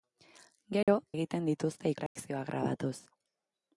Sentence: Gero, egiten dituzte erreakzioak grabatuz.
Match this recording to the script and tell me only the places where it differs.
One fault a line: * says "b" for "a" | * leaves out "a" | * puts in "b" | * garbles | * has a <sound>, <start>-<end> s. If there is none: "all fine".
* has a dropout, 0.8-0.9 s
* has a dropout, 2.1-2.2 s